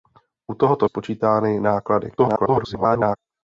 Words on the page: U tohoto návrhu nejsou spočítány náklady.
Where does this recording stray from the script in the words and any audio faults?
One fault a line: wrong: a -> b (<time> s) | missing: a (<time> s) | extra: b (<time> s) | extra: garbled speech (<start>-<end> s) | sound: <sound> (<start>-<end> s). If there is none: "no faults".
missing: návrhu nejsou (0.9 s)
extra: garbled speech (2.2-3.2 s)